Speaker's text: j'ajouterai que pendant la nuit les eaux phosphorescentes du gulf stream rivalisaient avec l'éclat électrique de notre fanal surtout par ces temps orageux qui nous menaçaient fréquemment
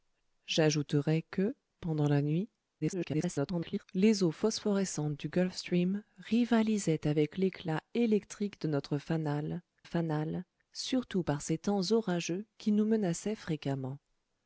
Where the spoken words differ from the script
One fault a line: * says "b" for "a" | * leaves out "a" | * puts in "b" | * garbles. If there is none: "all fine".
* garbles
* puts in "fanal"